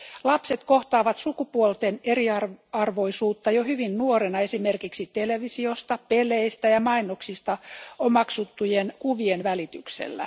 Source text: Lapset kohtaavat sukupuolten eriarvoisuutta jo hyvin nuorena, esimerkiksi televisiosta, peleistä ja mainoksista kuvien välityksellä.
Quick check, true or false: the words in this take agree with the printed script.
false